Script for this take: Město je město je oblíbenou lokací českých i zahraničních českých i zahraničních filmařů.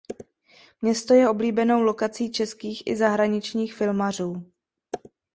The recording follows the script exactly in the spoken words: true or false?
false